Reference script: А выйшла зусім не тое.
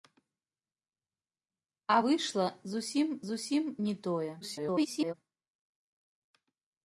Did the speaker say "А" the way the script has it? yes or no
yes